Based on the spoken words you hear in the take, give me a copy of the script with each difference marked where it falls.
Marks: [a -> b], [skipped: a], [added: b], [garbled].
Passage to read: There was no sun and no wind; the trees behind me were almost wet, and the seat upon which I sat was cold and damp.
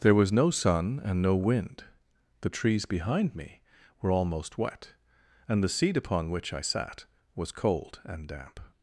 There was no sun and no wind; the trees behind me were almost wet, and the seat upon which I sat was cold and damp.